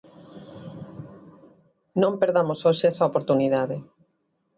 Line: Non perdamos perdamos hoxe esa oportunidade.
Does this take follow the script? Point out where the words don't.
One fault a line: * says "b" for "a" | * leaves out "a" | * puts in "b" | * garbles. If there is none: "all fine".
* leaves out "perdamos"